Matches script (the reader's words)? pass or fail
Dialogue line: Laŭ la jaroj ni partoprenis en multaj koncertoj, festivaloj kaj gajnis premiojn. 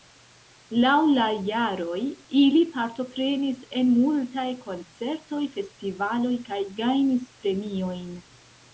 fail